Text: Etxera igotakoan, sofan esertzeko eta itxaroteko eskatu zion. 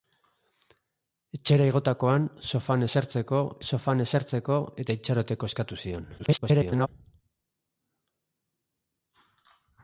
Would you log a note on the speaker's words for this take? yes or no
yes